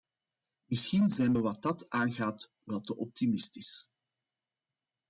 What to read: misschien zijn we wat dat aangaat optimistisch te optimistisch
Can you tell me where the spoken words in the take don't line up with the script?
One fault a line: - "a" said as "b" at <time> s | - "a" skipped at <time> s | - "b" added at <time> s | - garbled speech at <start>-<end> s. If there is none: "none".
- "optimistisch" said as "wel" at 2.6 s